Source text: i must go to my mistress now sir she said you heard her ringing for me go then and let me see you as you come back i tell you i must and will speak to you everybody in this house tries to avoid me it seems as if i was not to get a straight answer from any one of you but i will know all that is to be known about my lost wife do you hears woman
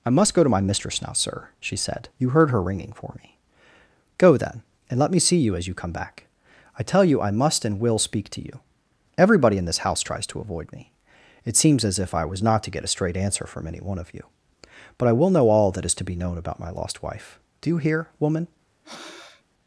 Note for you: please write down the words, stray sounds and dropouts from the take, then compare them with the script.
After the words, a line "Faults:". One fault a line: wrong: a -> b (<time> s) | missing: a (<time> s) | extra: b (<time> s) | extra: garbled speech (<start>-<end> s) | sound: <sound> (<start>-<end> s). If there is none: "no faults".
i must go to my mistress now sir she said you heard her ringing for me go then and let me see you as you come back i tell you i must and will speak to you everybody in this house tries to avoid me it seems as if i was not to get a straight answer from any one of you but i will know all that is to be known about my lost wife do you hear woman
Faults:
wrong: hears -> hear (17.8 s)
sound: breath (18.8-19.4 s)